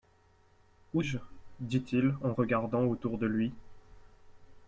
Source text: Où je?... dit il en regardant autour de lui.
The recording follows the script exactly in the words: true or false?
true